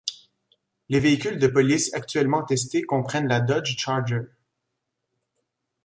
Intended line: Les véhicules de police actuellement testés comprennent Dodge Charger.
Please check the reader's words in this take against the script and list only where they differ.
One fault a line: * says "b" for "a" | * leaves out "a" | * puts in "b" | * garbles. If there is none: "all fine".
* puts in "la"